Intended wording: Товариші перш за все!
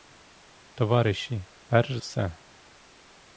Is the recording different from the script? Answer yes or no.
yes